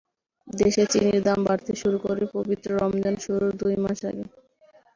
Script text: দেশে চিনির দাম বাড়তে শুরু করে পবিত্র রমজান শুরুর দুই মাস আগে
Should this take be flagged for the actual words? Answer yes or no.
no